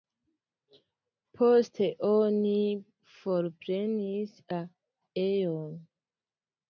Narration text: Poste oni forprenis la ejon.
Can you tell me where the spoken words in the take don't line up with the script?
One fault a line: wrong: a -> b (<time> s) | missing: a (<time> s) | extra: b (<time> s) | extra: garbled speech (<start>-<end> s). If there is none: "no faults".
no faults